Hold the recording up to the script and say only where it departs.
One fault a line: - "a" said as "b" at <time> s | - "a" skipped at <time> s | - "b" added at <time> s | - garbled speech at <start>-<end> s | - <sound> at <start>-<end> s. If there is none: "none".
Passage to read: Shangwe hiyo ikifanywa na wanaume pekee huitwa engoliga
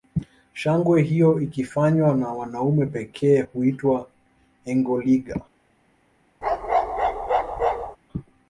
- bark at 6.4-8.0 s